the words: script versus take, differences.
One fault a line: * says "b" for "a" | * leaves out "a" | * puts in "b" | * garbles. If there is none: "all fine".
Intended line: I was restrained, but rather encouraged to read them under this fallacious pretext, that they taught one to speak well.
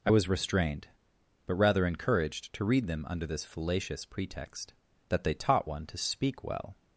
all fine